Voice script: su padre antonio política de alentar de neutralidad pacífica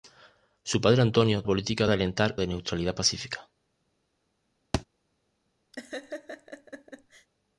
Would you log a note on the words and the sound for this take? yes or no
yes